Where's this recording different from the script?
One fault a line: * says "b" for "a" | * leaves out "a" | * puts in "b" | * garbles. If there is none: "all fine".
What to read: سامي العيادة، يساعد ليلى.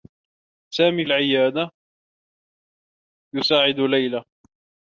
all fine